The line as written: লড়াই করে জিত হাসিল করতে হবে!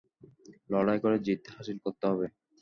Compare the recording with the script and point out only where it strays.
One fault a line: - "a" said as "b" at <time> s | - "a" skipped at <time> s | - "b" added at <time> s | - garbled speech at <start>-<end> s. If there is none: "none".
none